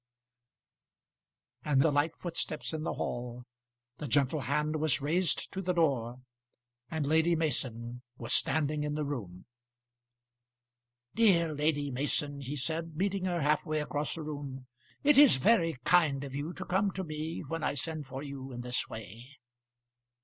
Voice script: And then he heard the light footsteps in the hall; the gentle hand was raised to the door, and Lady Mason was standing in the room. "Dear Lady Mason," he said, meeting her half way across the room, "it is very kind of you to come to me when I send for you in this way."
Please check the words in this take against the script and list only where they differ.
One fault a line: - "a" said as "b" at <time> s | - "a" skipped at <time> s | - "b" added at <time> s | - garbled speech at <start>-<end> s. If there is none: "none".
- "then he heard" skipped at 1.8 s